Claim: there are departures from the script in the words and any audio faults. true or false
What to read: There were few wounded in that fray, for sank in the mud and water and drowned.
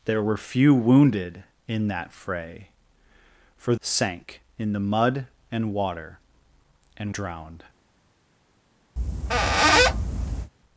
true